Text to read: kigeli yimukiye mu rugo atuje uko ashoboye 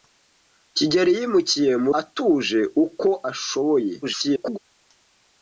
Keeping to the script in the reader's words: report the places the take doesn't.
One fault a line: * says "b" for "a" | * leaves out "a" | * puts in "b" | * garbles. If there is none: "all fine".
* leaves out "rugo"
* garbles